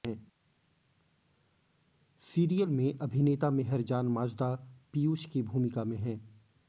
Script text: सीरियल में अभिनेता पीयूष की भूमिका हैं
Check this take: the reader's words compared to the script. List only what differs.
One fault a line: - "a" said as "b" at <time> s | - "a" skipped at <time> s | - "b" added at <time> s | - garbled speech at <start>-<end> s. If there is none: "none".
- "मेहरजान माजदा" added at 3.5 s
- "में" added at 5.8 s